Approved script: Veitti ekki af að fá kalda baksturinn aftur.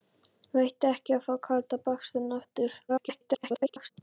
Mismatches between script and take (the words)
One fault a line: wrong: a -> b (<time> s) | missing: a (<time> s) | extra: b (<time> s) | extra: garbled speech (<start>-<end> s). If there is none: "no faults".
extra: garbled speech (2.9-3.9 s)